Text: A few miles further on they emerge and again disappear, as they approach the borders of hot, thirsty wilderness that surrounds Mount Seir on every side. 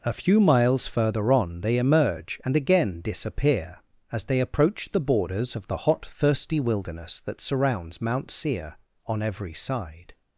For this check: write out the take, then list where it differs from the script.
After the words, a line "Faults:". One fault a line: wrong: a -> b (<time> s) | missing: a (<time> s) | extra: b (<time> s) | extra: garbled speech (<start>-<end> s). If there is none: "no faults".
A few miles further on they emerge and again disappear, as they approach the borders of the hot, thirsty wilderness that surrounds Mount Seir on every side.
Faults:
extra: the (5.7 s)